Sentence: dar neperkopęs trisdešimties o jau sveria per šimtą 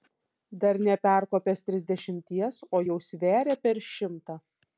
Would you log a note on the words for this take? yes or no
no